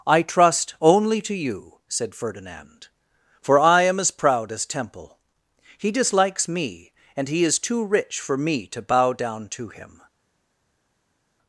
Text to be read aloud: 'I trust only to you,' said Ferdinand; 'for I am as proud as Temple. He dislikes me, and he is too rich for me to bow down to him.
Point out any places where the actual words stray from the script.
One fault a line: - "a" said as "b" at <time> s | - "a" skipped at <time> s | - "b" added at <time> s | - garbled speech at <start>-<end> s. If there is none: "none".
none